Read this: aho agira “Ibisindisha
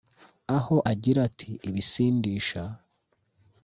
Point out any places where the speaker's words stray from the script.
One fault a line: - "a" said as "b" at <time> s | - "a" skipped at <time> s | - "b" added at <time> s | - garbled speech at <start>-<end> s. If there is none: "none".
- "ati" added at 1.3 s